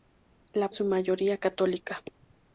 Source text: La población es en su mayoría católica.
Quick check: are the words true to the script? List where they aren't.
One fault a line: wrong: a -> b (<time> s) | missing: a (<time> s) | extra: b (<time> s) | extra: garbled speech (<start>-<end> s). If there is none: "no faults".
missing: población es en (0.7 s)